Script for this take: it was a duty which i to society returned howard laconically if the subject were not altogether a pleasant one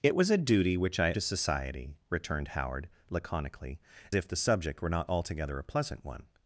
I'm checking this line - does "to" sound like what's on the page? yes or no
yes